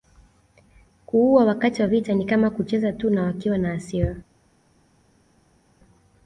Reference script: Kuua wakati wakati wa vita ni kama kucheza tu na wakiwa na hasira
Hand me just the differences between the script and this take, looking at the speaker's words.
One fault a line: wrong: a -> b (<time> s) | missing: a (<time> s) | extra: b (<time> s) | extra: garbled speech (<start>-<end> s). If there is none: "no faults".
missing: wakati (1.8 s)